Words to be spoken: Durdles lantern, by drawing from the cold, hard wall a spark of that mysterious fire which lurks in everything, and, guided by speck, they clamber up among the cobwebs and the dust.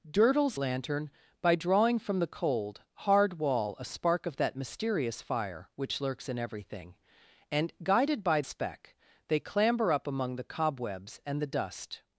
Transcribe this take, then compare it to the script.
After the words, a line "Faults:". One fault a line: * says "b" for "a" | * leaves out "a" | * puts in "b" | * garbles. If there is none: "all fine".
Durdles lantern, by drawing from the cold, hard wall a spark of that mysterious fire which lurks in everything, and, guided by speck, they clamber up among the cobwebs and the dust.
Faults:
all fine